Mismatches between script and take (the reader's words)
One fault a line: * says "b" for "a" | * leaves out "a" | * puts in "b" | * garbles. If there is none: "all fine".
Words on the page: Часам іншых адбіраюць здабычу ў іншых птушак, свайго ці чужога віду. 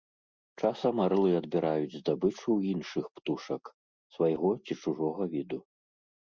* says "арлы" for "іншых"